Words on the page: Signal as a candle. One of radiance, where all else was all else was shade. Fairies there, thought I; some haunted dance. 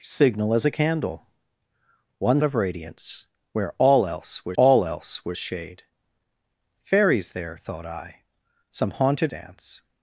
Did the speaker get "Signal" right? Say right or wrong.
right